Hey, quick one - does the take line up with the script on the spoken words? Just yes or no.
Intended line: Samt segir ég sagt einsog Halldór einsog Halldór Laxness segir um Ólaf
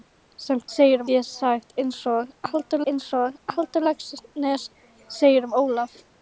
yes